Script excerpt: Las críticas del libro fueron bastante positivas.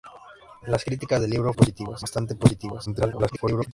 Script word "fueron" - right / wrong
wrong